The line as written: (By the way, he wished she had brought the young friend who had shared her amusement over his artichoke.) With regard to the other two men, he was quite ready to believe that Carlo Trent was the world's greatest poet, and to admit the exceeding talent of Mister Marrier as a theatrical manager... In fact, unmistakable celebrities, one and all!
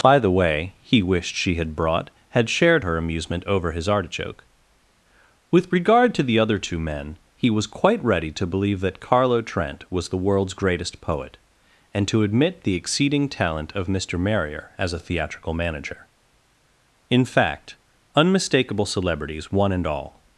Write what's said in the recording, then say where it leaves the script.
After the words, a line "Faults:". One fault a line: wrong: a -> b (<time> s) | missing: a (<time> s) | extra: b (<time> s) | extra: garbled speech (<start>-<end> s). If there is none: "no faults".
(By the way, he wished she had brought had shared her amusement over his artichoke.) With regard to the other two men, he was quite ready to believe that Carlo Trent was the world's greatest poet, and to admit the exceeding talent of Mister Marrier as a theatrical manager... In fact, unmistakable celebrities, one and all!
Faults:
missing: the young friend who (2.1 s)